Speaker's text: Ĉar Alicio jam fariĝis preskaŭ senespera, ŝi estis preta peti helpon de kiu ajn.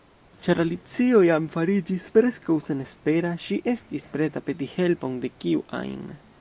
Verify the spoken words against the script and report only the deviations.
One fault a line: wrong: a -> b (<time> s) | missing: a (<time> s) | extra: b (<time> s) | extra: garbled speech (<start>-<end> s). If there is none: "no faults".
no faults